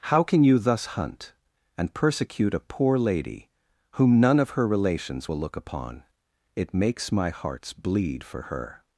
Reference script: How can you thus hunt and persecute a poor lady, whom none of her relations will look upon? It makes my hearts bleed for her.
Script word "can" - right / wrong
right